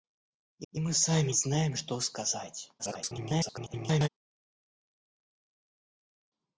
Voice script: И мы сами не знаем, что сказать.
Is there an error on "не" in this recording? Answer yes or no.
yes